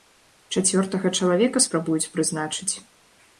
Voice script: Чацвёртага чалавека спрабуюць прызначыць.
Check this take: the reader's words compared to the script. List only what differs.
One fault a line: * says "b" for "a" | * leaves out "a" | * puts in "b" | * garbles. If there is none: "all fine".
all fine